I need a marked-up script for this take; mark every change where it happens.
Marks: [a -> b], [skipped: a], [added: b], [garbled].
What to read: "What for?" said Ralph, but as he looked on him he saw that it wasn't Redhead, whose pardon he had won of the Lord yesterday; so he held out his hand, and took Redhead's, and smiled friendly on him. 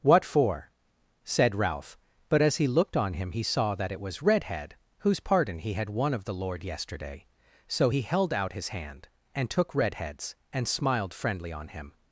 "What for?" said Ralph, but as he looked on him he saw that it [wasn't -> was] Redhead, whose pardon he had won of the Lord yesterday; so he held out his hand, and took Redhead's, and smiled friendly on him.